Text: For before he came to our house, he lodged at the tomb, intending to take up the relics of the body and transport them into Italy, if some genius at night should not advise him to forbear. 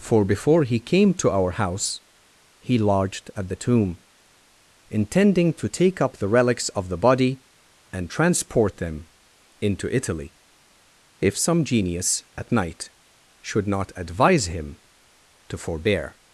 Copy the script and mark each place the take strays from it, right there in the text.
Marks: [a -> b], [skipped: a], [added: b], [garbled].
For before he came to our house, he lodged at the tomb, intending to take up the relics of the body and transport them into Italy, if some genius at night should not advise him to forbear.